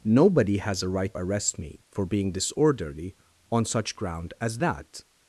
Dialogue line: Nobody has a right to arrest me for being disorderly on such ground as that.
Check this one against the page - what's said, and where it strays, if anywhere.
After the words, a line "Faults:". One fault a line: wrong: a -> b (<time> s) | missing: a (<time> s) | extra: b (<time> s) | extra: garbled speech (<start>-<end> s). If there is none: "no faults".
Nobody has a right arrest me for being disorderly on such ground as that.
Faults:
missing: to (1.1 s)